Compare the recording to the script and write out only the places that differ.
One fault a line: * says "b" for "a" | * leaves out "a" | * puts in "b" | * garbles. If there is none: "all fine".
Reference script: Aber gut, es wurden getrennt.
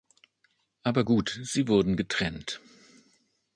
* says "sie" for "es"